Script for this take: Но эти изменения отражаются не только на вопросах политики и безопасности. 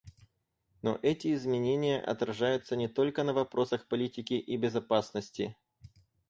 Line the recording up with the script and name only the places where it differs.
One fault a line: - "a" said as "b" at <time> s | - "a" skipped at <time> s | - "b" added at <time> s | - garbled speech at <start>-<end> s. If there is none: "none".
none